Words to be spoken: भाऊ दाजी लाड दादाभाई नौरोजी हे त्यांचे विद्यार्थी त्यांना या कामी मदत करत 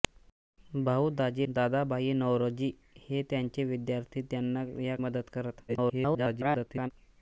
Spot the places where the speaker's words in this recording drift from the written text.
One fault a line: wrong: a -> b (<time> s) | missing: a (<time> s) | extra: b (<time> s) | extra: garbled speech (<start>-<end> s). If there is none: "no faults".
missing: लाड (1.4 s)
missing: कामी (5.0 s)
extra: garbled speech (5.7-6.9 s)